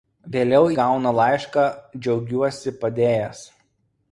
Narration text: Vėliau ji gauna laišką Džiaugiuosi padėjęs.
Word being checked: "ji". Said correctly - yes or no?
no